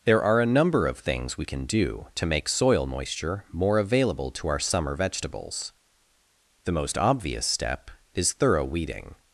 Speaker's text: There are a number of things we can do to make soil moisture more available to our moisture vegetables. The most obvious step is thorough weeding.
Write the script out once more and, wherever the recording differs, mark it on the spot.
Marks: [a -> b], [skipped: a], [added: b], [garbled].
There are a number of things we can do to make soil moisture more available to our [moisture -> summer] vegetables. The most obvious step is thorough weeding.